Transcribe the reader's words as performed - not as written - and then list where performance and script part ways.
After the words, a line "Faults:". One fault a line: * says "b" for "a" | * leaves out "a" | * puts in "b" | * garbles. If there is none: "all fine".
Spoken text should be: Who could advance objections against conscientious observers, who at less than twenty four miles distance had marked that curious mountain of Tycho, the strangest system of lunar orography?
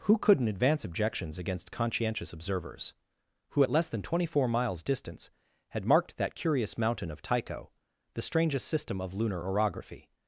Who couldn't advance objections against conscientious observers, who at less than twenty four miles distance had marked that curious mountain of Tycho, the strangest system of lunar orography?
Faults:
* says "couldn't" for "could"